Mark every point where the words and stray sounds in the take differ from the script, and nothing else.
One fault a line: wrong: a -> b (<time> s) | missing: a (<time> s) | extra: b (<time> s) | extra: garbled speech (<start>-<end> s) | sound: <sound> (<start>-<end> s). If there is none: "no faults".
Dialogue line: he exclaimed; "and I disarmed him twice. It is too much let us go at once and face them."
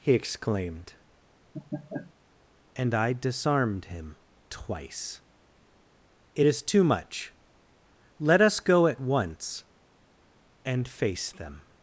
sound: laugh (1.5-2.1 s)